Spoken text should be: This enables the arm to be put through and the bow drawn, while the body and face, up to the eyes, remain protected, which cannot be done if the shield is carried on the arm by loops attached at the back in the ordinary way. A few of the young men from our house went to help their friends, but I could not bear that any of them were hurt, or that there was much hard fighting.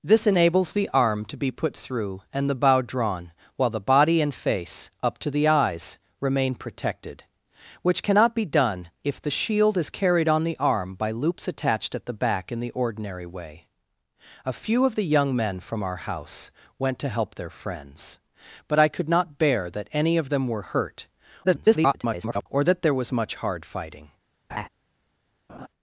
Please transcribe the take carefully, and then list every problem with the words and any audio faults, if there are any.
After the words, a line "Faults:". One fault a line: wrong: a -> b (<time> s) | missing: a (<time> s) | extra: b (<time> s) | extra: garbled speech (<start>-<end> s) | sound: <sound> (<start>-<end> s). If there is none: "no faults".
This enables the arm to be put through and the bow drawn, while the body and face, up to the eyes, remain protected, which cannot be done if the shield is carried on the arm by loops attached at the back in the ordinary way. A few of the young men from our house went to help their friends, but I could not bear that any of them were hurt, [garbled] or that there was much hard fighting.
Faults:
extra: garbled speech (21.4-22.5 s)
sound: laugh (24.5-24.7 s)
sound: laugh (25.5-25.7 s)